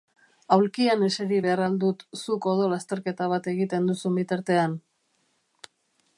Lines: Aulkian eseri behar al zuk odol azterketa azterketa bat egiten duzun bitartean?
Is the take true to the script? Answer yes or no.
no